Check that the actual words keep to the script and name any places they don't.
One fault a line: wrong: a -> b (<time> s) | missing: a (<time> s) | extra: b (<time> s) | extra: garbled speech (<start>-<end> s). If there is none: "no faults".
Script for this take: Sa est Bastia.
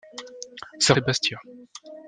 no faults